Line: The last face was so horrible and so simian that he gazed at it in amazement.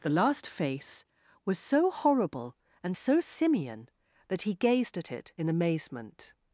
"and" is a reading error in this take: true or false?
false